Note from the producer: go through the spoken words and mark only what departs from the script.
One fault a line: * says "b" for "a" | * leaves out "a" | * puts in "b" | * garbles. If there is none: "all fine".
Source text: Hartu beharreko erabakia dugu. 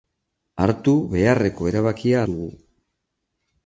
all fine